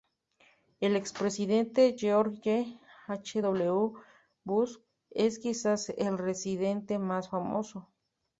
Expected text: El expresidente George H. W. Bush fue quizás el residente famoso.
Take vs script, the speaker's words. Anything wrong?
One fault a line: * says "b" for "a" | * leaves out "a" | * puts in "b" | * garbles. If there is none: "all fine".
* says "es" for "fue"
* puts in "más"